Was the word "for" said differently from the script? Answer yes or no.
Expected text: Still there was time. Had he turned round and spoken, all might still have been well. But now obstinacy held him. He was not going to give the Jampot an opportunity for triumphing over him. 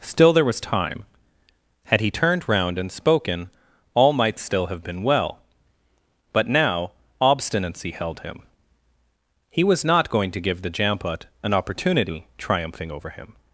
yes